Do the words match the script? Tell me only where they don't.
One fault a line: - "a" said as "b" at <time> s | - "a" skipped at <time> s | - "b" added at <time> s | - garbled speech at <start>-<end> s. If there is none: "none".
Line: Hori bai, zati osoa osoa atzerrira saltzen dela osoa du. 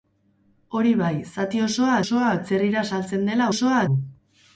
none